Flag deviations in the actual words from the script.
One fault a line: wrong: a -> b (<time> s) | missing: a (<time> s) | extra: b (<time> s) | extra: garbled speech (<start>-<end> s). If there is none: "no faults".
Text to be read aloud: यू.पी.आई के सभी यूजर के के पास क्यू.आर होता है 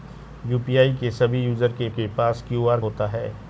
no faults